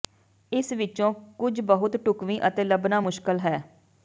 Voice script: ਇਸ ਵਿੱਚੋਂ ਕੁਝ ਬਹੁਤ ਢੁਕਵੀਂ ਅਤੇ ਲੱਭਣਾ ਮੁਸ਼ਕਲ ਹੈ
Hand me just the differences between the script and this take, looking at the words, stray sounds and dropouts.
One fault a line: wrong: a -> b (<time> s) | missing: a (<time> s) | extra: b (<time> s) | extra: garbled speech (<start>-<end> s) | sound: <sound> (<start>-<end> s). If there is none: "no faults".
no faults